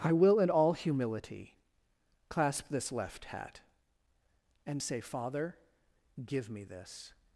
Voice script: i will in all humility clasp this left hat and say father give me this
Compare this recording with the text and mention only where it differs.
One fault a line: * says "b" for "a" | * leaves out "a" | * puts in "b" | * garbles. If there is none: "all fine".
all fine